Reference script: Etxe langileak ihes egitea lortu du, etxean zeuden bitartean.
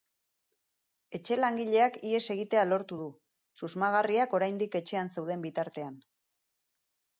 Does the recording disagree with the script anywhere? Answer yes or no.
yes